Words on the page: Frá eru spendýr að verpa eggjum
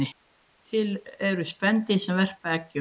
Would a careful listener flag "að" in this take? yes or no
yes